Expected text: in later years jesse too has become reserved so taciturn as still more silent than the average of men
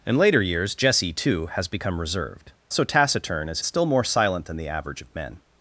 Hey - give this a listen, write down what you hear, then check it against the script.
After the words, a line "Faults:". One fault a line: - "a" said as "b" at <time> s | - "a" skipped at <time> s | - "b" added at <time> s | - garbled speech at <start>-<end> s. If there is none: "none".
in later years jesse too has become reserved so taciturn as still more silent than the average of men
Faults:
none